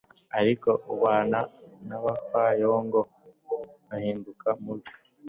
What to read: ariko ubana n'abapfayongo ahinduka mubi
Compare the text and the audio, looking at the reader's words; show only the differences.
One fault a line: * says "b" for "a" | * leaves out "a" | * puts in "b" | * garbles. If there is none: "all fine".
all fine